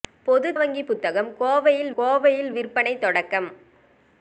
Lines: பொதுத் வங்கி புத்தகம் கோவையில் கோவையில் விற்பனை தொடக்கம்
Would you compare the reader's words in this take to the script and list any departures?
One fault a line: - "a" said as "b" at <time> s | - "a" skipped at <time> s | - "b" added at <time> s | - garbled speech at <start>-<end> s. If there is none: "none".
none